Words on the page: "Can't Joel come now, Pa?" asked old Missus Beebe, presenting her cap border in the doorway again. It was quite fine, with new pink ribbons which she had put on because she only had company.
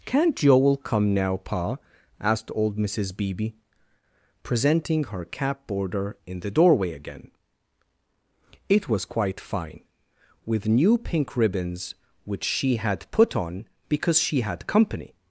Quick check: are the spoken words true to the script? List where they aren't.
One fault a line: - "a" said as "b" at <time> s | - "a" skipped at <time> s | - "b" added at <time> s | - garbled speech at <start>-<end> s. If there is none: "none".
- "only" skipped at 14.4 s